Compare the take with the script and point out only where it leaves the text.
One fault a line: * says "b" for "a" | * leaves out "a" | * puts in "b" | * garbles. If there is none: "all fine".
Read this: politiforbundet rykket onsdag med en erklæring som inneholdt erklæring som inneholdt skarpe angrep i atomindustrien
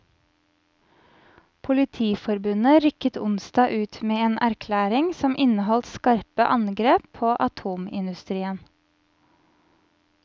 * puts in "ut"
* leaves out "erklæring som inneholdt"
* says "på" for "i"